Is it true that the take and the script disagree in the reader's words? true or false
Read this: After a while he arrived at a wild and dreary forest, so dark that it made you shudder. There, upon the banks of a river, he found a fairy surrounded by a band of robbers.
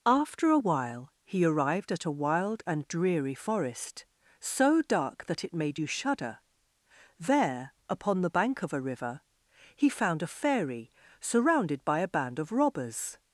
true